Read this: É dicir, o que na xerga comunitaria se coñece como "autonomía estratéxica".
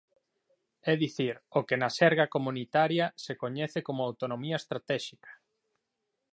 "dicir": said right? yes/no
yes